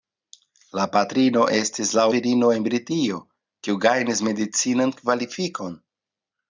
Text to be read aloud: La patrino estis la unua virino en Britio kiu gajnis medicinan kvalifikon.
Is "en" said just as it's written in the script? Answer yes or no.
yes